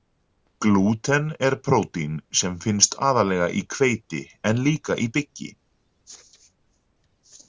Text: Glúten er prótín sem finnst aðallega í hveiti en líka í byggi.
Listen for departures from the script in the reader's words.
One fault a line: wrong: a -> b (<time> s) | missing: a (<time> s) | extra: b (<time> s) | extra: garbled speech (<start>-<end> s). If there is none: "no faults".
no faults